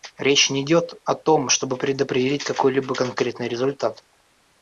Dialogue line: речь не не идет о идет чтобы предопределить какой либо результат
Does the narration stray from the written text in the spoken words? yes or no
yes